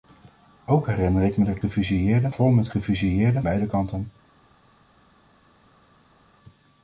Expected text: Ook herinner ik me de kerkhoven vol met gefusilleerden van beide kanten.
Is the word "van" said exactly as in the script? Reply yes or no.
no